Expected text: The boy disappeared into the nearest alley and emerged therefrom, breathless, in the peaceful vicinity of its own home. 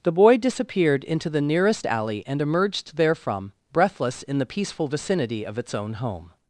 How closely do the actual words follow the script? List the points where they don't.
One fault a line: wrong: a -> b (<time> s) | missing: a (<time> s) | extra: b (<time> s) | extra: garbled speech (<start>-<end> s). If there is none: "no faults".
no faults